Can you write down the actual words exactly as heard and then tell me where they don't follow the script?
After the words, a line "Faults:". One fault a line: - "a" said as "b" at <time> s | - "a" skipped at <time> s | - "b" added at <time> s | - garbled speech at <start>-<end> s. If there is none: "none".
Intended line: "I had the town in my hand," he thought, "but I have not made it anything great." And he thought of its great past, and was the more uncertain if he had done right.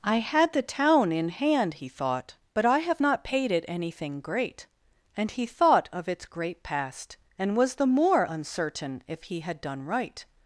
"I had the town in hand," he thought, "but I have not paid it anything great." And he thought of its great past, and was the more uncertain if he had done right.
Faults:
- "my" skipped at 1.3 s
- "made" said as "paid" at 3.2 s